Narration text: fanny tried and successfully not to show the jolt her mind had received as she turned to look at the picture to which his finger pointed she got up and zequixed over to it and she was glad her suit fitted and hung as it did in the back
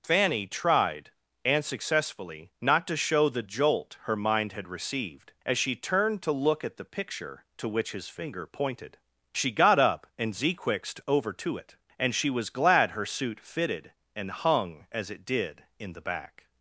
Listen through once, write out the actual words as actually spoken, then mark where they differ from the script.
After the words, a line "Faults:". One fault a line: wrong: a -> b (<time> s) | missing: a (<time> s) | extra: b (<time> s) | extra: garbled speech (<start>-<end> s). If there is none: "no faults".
fanny tried and successfully not to show the jolt her mind had received as she turned to look at the picture to which his finger pointed she got up and zequixed over to it and she was glad her suit fitted and hung as it did in the back
Faults:
no faults